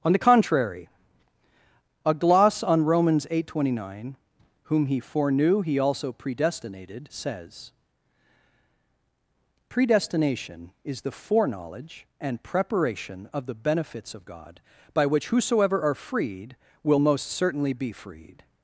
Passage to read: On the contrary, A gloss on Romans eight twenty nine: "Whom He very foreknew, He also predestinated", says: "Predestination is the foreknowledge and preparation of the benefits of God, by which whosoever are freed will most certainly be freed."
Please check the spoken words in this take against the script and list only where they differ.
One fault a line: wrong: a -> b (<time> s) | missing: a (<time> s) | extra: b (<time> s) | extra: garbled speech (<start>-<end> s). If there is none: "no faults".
missing: very (5.0 s)